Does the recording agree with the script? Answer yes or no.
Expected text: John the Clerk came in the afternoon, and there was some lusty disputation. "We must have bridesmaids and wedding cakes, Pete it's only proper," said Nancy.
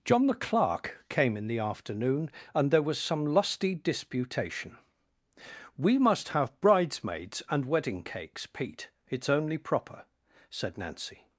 yes